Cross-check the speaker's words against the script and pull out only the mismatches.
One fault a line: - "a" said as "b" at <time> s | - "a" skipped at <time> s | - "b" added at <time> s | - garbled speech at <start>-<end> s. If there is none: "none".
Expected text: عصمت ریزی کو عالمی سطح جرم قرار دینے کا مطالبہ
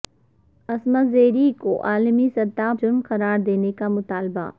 none